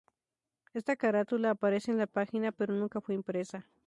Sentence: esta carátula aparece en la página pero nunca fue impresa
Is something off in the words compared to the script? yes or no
no